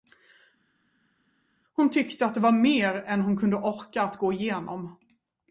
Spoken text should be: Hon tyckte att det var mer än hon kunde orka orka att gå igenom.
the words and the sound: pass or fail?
fail